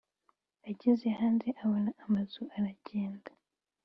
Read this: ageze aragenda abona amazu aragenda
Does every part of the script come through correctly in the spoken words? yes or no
no